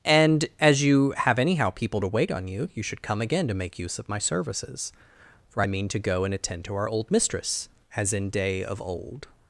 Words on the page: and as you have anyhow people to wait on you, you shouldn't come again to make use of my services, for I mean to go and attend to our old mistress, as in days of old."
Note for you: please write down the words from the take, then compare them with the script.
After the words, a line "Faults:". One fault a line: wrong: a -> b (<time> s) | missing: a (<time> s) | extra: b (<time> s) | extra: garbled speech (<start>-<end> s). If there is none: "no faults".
and as you have anyhow people to wait on you, you should come again to make use of my services, for I mean to go and attend to our old mistress, as in day of old."
Faults:
wrong: shouldn't -> should (2.8 s)
wrong: days -> day (8.3 s)